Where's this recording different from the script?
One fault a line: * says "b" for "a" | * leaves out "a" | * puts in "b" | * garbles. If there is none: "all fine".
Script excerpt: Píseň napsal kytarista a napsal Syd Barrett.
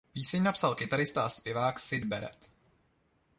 * says "zpěvák" for "napsal"